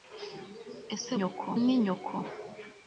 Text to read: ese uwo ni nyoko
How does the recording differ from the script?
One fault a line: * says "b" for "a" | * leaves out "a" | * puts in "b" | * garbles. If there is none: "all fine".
* says "nyoko" for "uwo"